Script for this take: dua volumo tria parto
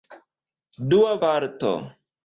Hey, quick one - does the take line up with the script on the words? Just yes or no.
no